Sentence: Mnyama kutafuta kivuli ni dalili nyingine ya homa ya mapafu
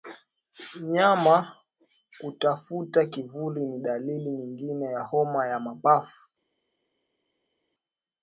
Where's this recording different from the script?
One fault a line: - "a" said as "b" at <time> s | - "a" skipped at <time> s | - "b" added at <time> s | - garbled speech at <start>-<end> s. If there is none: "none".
none